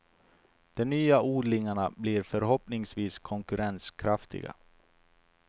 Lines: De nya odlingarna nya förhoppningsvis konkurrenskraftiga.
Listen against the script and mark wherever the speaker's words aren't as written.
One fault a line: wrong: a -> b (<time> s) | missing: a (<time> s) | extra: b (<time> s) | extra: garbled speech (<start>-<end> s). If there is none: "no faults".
wrong: nya -> blir (2.0 s)